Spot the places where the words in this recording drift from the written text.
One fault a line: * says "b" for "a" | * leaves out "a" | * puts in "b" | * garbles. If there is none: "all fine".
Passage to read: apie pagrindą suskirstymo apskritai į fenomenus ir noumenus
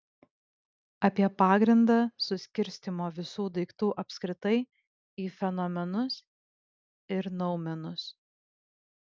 * puts in "visų daiktų"